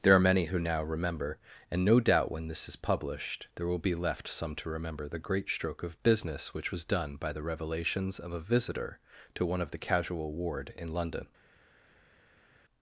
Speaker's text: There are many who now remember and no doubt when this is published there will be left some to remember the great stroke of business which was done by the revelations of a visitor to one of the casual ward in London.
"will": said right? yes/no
yes